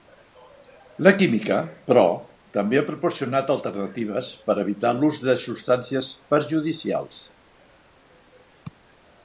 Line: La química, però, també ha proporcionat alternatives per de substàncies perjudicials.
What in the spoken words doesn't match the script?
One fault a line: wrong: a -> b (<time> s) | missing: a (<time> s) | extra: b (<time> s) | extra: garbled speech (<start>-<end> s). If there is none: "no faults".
extra: evitar l'ús (4.6 s)